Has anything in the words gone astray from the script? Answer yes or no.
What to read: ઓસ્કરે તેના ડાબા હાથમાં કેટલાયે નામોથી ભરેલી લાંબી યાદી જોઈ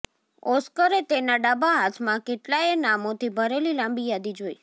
no